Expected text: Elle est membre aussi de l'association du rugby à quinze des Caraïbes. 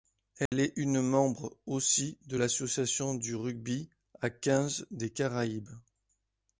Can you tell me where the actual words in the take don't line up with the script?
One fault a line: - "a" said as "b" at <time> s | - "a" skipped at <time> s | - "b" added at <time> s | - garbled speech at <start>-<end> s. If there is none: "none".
- "une" added at 0.8 s